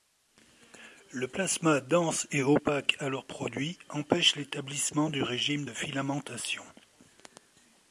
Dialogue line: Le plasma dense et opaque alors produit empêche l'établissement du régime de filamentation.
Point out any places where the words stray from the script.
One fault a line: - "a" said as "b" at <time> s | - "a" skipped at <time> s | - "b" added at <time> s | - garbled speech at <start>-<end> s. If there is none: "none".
none